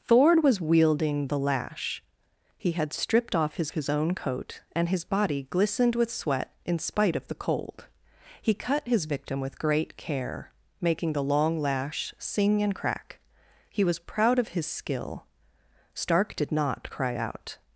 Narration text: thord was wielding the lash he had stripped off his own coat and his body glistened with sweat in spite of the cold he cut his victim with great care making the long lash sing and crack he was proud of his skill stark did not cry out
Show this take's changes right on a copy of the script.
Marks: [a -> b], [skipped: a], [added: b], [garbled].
thord was wielding the lash he had stripped off his [added: his] own coat and his body glistened with sweat in spite of the cold he cut his victim with great care making the long lash sing and crack he was proud of his skill stark did not cry out